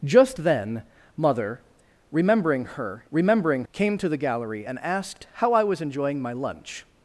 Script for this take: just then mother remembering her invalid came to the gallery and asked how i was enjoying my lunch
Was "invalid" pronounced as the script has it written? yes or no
no